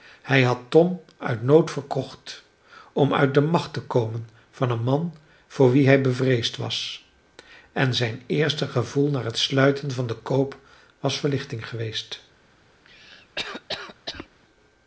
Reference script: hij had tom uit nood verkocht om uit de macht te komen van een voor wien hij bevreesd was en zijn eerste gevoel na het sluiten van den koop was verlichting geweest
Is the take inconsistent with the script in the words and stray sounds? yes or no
yes